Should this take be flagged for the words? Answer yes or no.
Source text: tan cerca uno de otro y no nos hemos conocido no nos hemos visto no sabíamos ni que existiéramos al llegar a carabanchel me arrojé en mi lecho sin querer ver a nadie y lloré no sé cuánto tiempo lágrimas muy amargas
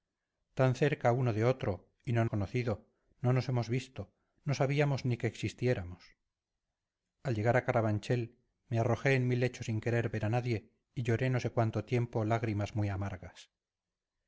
yes